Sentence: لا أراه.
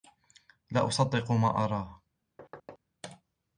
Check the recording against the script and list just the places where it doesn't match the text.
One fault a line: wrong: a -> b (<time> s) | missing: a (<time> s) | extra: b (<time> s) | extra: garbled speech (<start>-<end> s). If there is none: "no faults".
extra: أصدق ما (0.9 s)